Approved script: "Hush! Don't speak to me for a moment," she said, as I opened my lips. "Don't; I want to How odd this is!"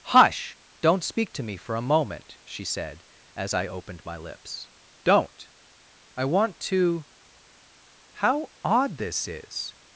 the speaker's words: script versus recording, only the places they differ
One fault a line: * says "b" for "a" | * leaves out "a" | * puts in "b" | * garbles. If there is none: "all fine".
all fine